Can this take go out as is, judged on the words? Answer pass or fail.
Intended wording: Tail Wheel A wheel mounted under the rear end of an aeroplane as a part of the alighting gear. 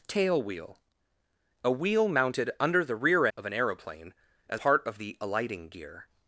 fail